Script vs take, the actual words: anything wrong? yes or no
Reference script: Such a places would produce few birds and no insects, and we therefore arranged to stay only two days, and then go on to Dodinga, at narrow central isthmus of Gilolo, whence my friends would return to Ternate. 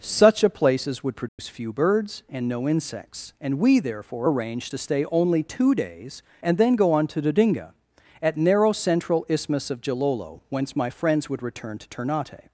no